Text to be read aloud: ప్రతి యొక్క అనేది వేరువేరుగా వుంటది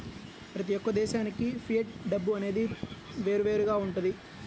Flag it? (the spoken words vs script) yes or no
yes